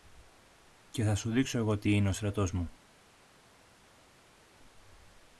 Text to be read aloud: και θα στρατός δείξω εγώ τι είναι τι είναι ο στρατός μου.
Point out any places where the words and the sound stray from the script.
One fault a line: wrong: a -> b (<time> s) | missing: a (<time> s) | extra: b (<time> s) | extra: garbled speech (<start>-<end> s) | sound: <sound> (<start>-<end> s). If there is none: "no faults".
wrong: στρατός -> σου (1.1 s)
missing: τι είναι (2.1 s)